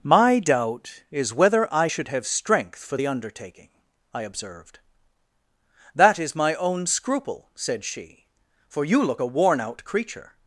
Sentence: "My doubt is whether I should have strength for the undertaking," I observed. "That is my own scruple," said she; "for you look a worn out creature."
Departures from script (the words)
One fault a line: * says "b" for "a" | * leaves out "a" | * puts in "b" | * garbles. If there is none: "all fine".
all fine